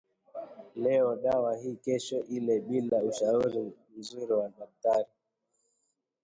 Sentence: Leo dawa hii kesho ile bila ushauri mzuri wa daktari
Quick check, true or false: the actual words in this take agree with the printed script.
true